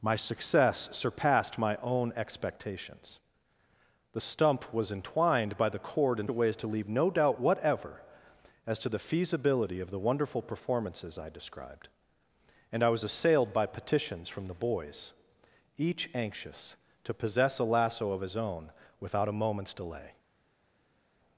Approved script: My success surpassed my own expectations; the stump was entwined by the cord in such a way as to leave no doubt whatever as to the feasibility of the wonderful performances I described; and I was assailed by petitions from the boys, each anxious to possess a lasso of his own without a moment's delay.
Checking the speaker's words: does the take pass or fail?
fail